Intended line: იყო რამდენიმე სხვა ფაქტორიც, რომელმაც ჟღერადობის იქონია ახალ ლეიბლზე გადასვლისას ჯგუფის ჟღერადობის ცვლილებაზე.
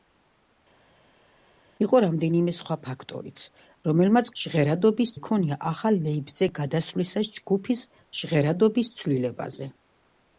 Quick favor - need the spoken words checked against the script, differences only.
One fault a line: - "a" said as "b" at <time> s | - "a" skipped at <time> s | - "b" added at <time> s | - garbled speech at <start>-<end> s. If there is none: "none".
none